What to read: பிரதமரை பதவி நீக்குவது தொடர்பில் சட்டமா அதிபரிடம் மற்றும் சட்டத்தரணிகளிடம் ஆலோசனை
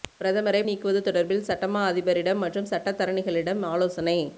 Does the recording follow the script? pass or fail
fail